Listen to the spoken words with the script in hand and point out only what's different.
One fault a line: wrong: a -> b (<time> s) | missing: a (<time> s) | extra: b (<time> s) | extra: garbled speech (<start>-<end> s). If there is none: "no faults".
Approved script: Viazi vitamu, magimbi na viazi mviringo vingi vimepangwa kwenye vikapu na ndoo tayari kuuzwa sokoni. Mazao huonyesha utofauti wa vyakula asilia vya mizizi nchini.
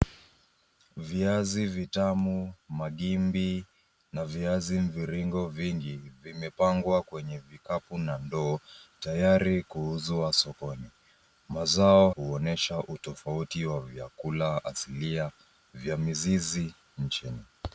no faults